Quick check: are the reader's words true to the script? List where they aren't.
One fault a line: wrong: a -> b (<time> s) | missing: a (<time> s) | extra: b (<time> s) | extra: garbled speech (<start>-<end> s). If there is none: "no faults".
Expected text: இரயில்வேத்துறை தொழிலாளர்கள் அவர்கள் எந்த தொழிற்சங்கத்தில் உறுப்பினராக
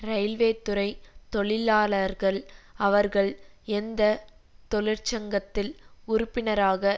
no faults